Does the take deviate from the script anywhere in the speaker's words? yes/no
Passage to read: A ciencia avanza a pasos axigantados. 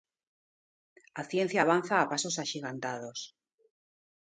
no